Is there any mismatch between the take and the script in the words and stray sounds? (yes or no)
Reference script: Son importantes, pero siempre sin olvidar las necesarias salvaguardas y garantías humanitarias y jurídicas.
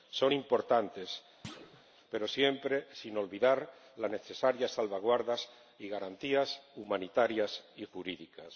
yes